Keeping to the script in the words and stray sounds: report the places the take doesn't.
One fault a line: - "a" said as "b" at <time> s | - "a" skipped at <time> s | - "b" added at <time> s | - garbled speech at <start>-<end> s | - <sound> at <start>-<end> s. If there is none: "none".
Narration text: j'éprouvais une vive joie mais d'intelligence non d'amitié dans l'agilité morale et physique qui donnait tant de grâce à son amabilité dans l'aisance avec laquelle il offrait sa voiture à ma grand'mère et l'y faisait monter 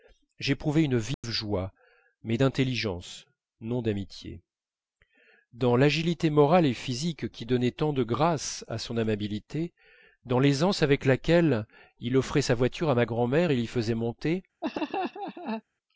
- dropout at 1.1-1.2 s
- laugh at 14.6-15.6 s